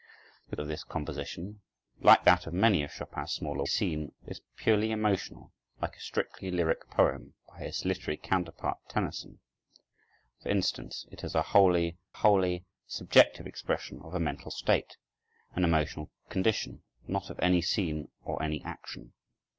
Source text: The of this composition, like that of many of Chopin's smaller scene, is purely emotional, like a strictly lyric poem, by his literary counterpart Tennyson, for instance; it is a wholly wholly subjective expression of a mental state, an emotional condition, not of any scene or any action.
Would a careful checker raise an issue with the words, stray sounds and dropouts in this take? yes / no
no